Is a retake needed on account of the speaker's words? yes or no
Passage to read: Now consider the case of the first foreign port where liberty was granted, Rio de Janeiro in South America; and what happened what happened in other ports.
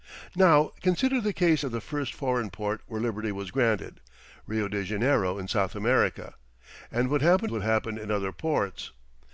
no